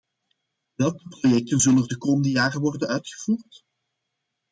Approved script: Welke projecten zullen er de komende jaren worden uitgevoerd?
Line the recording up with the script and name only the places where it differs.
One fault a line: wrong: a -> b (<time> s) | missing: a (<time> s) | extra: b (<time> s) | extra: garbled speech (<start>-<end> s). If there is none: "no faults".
no faults